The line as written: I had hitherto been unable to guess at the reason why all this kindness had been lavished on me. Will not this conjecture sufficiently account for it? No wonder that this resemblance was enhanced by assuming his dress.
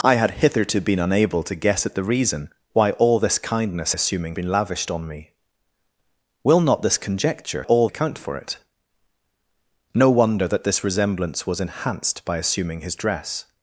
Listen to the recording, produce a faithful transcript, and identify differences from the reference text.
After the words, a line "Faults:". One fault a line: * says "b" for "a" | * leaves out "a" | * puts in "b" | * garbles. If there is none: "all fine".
I had hitherto been unable to guess at the reason why all this kindness assuming been lavished on me. Will not this conjecture all account for it? No wonder that this resemblance was enhanced by assuming his dress.
Faults:
* says "assuming" for "had"
* says "all" for "sufficiently"